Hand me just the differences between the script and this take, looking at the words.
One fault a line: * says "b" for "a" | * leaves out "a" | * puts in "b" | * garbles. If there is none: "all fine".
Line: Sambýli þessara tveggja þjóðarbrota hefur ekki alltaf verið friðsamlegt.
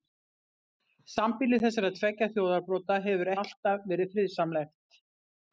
* leaves out "ekki"